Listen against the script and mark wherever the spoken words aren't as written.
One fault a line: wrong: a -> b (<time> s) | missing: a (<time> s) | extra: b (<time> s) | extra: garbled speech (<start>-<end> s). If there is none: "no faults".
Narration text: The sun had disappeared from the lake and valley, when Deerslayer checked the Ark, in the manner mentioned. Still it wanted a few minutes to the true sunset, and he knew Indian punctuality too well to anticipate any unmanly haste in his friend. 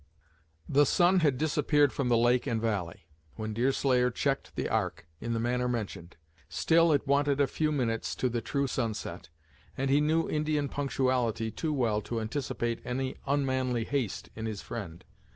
no faults